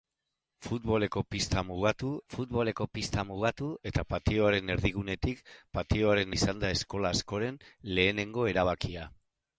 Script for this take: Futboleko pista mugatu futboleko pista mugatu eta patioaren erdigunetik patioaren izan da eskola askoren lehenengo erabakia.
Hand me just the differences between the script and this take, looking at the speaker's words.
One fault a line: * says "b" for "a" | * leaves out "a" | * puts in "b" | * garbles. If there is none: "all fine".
all fine